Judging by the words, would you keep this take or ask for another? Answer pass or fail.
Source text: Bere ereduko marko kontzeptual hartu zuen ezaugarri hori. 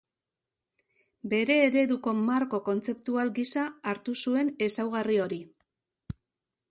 fail